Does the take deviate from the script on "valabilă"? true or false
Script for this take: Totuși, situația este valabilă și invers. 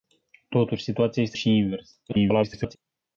true